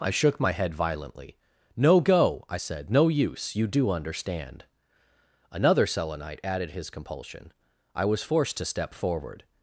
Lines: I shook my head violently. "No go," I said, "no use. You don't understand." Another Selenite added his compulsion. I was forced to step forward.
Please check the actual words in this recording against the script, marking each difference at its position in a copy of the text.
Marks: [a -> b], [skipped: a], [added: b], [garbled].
I shook my head violently. "No go," I said, "no use. You [don't -> do] understand." Another Selenite added his compulsion. I was forced to step forward.